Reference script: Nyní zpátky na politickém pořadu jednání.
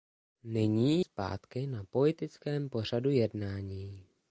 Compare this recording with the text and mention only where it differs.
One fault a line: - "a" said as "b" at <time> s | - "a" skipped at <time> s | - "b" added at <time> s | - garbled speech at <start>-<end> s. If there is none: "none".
none